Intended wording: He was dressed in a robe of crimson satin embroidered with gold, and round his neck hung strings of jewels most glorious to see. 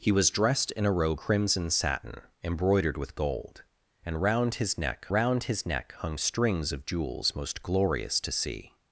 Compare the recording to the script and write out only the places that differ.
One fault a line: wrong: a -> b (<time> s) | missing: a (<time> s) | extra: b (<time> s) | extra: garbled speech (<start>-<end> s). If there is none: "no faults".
missing: of (1.2 s)
extra: round his neck (5.1 s)